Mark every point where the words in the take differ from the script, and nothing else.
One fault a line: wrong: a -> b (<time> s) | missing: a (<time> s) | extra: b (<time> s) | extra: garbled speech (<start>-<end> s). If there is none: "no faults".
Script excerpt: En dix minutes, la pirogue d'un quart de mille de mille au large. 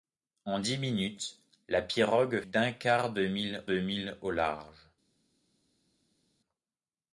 no faults